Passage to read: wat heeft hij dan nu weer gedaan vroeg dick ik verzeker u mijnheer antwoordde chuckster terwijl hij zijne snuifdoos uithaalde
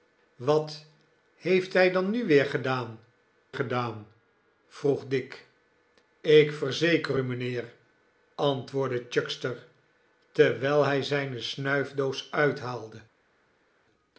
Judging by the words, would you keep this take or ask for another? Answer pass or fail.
fail